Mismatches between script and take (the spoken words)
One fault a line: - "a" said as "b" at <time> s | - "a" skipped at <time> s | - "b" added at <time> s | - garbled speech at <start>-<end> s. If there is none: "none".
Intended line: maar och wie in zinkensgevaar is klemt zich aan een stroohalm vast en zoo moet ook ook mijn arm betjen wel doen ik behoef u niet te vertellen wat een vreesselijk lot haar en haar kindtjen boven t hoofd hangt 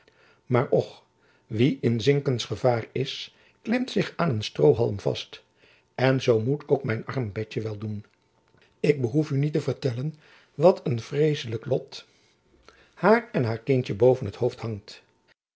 - "ook" skipped at 6.8 s